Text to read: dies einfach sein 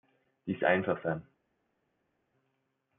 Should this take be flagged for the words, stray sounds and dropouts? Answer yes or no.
no